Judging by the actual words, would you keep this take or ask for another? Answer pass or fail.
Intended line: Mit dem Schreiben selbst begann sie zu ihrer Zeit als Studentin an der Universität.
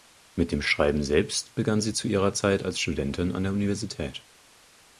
pass